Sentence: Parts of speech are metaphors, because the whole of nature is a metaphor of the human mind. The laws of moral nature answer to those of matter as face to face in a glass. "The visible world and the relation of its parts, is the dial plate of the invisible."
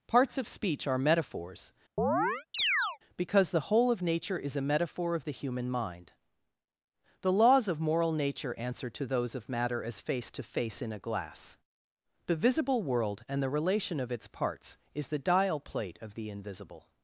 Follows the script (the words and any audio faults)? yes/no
no